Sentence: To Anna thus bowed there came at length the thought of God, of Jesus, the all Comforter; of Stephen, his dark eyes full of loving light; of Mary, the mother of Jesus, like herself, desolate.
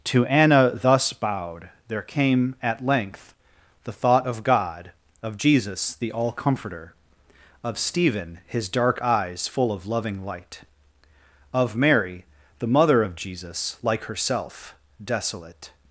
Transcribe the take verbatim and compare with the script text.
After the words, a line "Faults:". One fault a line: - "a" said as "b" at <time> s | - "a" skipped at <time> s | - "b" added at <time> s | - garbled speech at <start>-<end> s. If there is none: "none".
To Anna thus bowed there came at length the thought of God, of Jesus, the all Comforter; of Stephen, his dark eyes full of loving light; of Mary, the mother of Jesus, like herself, desolate.
Faults:
none